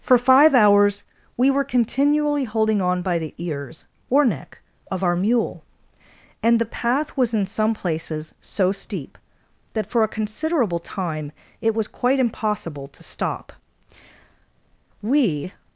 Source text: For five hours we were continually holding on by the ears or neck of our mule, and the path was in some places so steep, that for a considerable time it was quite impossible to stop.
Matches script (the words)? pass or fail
fail